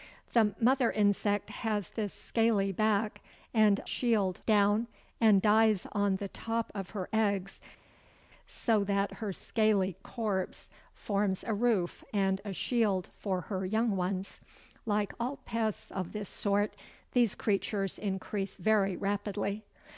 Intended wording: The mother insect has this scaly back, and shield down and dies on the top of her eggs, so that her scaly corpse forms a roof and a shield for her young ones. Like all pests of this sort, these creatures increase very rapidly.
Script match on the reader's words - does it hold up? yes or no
yes